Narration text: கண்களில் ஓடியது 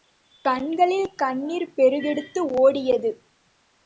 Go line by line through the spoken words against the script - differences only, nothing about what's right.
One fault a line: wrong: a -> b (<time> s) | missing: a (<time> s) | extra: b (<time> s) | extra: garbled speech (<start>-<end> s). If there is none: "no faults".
extra: கண்ணீர் பெருக்கெடுத்து (1.1 s)